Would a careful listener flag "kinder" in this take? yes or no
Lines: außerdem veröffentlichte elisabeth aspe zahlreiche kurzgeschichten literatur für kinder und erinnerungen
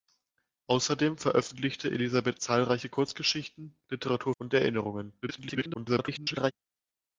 yes